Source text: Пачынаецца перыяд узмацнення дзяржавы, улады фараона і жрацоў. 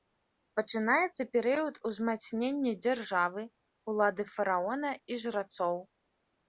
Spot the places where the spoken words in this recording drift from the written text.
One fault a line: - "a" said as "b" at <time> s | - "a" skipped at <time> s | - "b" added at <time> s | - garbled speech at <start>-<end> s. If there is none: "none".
none